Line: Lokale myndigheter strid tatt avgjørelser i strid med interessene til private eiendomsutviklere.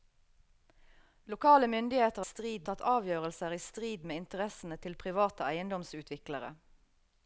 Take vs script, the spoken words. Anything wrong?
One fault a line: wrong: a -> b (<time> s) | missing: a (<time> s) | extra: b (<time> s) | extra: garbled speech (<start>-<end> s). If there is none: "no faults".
no faults